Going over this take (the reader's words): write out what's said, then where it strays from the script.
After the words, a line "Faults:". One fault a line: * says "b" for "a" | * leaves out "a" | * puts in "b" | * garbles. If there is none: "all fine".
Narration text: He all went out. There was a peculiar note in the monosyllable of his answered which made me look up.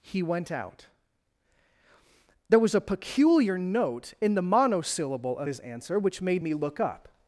He went out. There was a peculiar note in the monosyllable of his answer which made me look up.
Faults:
* leaves out "all"
* says "answer" for "answered"